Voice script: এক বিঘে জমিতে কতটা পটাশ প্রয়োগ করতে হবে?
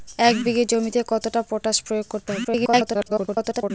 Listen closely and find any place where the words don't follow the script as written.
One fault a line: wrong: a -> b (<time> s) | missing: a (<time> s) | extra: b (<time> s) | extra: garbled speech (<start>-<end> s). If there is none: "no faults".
extra: garbled speech (2.4-3.7 s)